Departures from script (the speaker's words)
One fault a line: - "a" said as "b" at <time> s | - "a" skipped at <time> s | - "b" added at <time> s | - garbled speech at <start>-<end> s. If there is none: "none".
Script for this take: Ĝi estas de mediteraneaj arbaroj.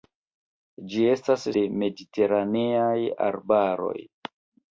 none